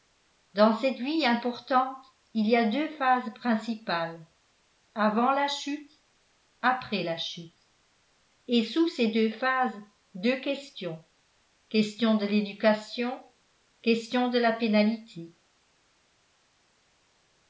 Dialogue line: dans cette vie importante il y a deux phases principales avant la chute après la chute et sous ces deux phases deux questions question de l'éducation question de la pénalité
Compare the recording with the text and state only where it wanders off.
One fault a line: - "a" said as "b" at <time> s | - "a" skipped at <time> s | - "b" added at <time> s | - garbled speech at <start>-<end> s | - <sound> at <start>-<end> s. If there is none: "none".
none